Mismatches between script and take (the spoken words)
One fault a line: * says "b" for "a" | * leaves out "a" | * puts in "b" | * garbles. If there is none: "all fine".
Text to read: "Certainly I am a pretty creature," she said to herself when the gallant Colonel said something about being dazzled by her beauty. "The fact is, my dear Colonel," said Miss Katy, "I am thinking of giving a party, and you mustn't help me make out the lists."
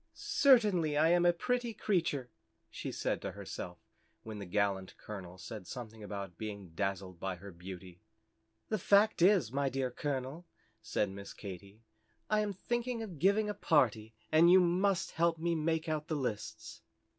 * says "must" for "mustn't"